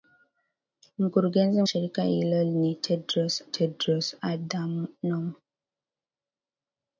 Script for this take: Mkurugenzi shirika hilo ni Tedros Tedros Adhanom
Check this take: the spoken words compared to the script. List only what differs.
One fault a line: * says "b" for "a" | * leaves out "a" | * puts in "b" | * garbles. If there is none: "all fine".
all fine